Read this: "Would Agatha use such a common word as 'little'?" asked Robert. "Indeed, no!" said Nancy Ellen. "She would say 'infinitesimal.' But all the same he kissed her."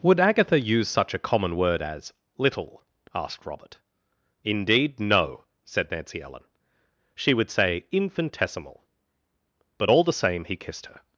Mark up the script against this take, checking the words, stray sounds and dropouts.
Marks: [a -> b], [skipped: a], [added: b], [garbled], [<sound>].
"Would Agatha use such a common word as 'little'?" asked Robert. "Indeed, no!" said Nancy Ellen. "She would say 'infinitesimal.' But all the same he kissed her."